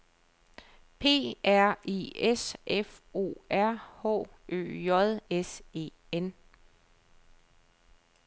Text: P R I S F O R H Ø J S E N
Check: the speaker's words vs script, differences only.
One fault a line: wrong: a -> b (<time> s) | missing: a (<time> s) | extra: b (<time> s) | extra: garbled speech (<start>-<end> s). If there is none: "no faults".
no faults